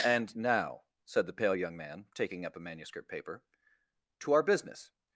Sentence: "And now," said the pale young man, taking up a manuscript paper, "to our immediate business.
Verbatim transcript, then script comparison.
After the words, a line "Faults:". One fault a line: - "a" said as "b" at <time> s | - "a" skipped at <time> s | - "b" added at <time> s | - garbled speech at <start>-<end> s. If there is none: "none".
"And now," said the pale young man, taking up a manuscript paper, "to our business.
Faults:
- "immediate" skipped at 4.4 s